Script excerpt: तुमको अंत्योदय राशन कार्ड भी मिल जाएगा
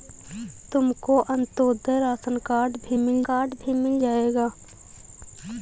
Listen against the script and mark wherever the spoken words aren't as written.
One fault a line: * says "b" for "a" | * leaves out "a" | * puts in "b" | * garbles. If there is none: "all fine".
* puts in "कार्ड भी मिल"